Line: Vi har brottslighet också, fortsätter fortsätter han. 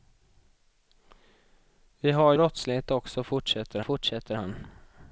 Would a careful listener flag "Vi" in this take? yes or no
no